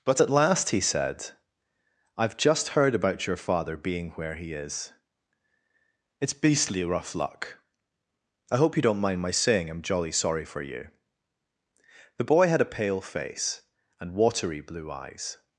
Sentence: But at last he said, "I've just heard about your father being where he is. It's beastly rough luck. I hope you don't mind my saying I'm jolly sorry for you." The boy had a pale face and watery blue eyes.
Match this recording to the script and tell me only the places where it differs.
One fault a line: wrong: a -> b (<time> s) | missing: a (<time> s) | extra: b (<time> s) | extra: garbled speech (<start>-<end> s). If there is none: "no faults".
no faults